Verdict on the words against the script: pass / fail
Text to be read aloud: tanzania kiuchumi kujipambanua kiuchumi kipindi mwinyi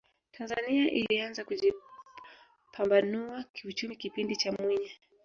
fail